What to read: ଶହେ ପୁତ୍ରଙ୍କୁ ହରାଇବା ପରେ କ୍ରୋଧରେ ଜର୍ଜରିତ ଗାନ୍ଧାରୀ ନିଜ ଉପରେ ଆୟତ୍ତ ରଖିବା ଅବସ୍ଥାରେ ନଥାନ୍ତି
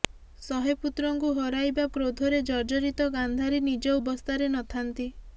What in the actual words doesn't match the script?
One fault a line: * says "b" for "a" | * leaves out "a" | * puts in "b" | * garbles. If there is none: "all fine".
* leaves out "ପରେ"
* leaves out "ଉପରେ ଆୟତ୍ତ ରଖିବା"